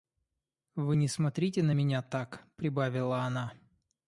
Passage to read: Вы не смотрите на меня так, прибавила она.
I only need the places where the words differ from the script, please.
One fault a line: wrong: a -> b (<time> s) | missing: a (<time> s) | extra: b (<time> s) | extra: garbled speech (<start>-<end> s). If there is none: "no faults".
no faults